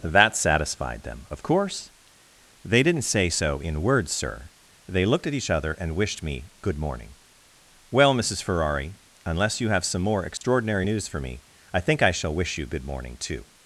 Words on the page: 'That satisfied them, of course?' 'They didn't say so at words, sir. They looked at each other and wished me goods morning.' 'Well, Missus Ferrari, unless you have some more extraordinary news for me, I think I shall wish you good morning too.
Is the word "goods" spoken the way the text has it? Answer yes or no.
no